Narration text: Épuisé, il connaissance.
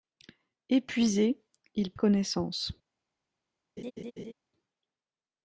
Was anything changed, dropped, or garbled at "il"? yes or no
no